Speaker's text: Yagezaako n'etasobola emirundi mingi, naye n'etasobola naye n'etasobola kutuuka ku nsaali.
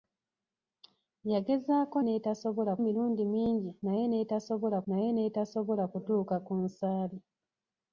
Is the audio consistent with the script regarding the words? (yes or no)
yes